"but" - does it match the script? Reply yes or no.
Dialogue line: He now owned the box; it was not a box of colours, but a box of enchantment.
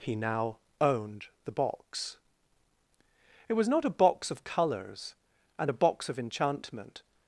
no